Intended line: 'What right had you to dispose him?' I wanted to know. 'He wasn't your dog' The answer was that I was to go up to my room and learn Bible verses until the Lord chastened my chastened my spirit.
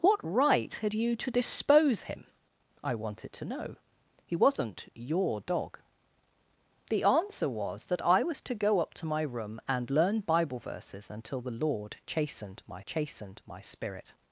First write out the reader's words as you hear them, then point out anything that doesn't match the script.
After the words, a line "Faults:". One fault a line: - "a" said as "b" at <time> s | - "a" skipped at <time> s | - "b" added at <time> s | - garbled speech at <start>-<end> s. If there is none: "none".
'What right had you to dispose him?' I wanted to know. 'He wasn't your dog' The answer was that I was to go up to my room and learn Bible verses until the Lord chastened my chastened my spirit.
Faults:
none